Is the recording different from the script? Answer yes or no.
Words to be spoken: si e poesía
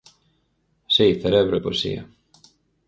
yes